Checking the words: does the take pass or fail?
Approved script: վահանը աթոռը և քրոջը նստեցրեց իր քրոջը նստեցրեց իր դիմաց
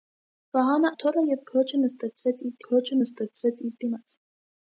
pass